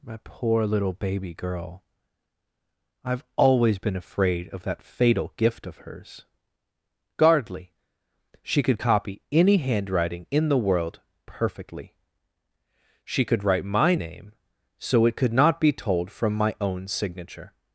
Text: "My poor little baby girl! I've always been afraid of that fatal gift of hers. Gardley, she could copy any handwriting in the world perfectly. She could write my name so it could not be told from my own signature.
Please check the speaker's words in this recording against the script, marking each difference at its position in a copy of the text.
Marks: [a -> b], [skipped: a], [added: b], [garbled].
"My poor little baby girl! I've always been afraid of that fatal gift of hers. Gardley, she could copy any handwriting in the world perfectly. She could write my name so it could not be told from my own signature.